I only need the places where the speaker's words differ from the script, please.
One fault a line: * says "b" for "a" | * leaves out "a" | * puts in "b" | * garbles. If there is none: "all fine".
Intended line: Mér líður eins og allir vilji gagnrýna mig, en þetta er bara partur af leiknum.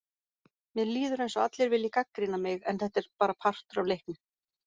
all fine